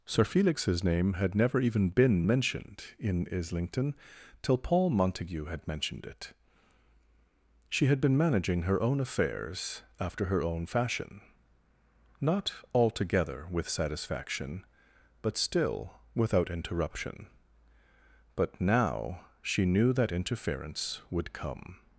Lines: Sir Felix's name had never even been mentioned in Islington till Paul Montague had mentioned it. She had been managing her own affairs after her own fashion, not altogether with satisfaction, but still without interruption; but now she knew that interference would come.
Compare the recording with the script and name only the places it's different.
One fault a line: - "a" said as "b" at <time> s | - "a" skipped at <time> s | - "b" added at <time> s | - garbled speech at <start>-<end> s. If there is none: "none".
none